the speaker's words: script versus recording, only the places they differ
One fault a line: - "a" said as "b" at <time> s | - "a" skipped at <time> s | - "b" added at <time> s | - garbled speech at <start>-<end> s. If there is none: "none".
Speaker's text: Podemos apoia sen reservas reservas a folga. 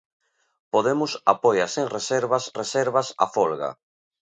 none